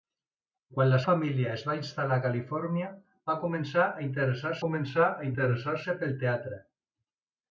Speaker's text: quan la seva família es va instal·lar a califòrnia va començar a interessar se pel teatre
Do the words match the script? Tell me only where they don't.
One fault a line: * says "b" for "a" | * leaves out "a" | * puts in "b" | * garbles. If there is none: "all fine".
* leaves out "seva"
* puts in "començar a interessar"